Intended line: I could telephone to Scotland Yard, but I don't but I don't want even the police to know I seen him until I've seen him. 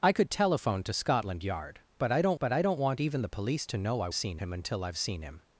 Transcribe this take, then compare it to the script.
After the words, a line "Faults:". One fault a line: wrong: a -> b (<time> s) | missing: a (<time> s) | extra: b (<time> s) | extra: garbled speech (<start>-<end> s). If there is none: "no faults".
I could telephone to Scotland Yard, but I don't but I don't want even the police to know I seen him until I've seen him.
Faults:
no faults